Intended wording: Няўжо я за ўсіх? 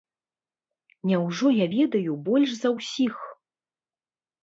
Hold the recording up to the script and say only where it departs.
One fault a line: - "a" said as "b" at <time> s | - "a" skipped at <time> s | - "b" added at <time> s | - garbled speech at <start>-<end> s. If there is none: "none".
- "ведаю больш" added at 1.8 s